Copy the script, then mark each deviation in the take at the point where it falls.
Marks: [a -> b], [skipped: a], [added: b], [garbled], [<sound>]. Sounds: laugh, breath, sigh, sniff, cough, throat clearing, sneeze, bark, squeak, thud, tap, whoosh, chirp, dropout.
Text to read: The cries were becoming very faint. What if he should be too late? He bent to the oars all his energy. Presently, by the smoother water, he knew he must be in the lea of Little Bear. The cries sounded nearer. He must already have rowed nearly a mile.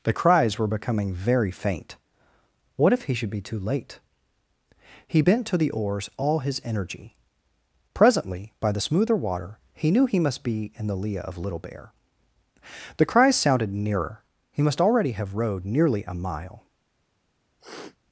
The cries were becoming very faint. What if he should be too late? He bent to the oars all his energy. Presently, by the smoother water, he knew he must be in the lea of Little Bear. The cries sounded nearer. He must already have rowed nearly a mile. [sniff]